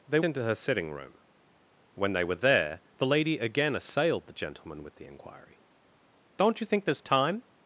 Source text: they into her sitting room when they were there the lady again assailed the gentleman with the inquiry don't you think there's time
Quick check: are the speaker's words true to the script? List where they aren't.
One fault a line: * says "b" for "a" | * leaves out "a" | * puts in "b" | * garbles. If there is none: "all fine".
all fine